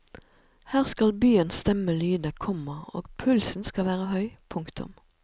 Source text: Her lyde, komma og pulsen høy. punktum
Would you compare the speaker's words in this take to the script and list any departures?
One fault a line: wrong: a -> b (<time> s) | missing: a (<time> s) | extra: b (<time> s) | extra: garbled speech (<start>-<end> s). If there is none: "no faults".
extra: skal byens stemme (0.8 s)
extra: skal være (3.6 s)